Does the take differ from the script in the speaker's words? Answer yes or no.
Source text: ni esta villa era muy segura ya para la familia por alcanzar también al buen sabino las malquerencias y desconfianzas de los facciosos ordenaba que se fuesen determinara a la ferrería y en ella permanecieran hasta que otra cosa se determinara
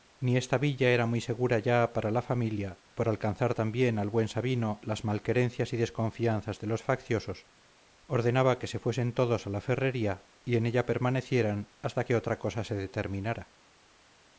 yes